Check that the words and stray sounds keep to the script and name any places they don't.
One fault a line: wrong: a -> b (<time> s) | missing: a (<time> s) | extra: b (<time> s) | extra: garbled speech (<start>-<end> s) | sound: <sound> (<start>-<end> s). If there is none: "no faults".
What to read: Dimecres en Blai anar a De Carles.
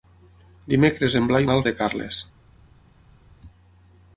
no faults